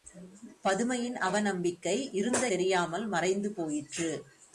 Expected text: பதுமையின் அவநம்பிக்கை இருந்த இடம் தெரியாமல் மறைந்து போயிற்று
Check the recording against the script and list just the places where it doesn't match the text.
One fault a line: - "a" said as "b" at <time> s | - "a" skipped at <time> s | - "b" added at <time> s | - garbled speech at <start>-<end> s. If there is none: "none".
- "இடம்" skipped at 2.5 s